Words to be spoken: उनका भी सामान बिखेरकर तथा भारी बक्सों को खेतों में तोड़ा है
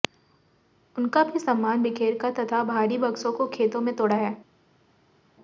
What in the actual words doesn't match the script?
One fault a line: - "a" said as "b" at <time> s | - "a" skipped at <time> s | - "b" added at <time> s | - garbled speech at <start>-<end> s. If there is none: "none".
none